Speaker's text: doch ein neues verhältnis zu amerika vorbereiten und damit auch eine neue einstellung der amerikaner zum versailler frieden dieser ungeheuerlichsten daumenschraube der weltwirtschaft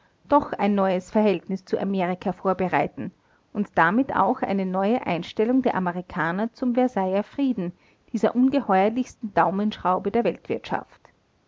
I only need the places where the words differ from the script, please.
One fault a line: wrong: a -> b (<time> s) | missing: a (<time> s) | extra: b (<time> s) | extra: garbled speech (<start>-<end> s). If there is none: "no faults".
no faults